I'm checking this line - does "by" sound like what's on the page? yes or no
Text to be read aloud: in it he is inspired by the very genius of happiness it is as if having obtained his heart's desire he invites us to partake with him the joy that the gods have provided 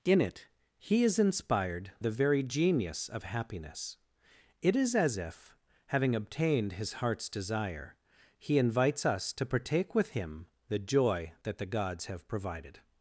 no